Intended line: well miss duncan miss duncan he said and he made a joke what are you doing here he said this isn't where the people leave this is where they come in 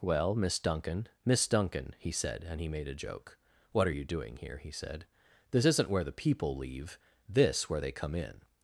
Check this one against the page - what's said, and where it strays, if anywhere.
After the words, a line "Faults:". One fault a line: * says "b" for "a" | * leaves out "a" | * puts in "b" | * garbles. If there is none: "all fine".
well miss duncan miss duncan he said and he made a joke what are you doing here he said this isn't where the people leave this where they come in
Faults:
* leaves out "is"